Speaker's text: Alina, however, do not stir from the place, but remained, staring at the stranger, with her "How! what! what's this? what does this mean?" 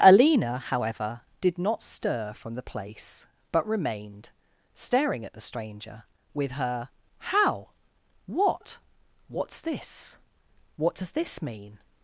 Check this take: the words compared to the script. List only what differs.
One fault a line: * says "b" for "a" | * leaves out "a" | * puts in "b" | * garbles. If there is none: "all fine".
* says "did" for "do"